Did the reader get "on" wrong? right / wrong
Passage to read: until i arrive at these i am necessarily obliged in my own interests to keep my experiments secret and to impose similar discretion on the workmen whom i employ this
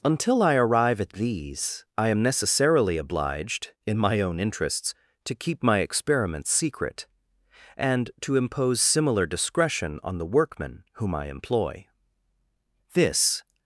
right